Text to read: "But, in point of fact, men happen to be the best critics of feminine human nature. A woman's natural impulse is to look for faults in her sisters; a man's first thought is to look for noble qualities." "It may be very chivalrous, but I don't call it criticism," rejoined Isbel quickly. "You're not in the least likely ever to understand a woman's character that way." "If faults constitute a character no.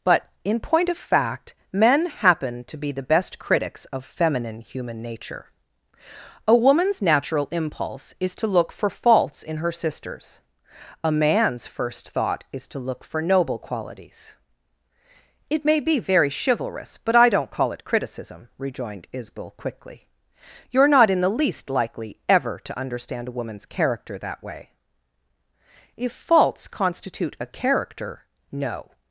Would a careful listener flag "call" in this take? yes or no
no